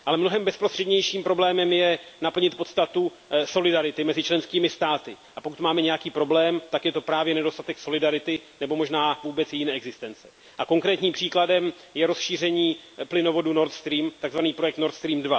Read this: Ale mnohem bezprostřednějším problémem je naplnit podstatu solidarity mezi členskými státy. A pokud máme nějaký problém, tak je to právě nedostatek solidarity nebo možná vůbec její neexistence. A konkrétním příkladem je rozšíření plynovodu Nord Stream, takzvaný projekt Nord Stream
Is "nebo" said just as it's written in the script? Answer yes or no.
yes